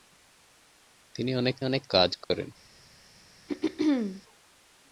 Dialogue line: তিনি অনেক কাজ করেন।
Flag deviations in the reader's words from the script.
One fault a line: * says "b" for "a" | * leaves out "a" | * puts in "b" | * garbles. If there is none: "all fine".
* puts in "অনেক"